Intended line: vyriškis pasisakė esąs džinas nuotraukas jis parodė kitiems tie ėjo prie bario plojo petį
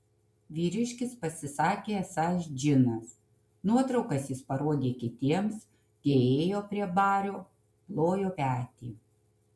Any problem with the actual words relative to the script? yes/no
no